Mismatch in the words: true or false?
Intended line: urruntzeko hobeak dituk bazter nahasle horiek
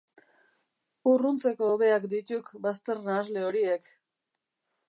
false